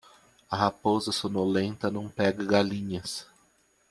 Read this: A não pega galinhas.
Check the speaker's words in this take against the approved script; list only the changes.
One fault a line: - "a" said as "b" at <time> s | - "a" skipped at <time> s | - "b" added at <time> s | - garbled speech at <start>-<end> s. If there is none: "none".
- "raposa sonolenta" added at 0.6 s